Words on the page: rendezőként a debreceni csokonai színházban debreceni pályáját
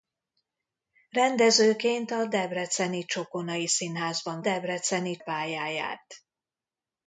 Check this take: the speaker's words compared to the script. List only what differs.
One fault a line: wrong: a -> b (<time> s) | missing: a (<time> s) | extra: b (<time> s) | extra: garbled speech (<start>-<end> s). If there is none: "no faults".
no faults